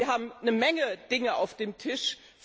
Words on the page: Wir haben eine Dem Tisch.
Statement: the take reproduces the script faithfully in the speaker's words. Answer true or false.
false